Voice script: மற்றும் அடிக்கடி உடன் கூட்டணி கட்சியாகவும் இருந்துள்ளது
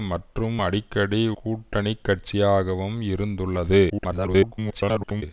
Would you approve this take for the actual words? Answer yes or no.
no